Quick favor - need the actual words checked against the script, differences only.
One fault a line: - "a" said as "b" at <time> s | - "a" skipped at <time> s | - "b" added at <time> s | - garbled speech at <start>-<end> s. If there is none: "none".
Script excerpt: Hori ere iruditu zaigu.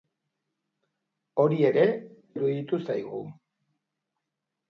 none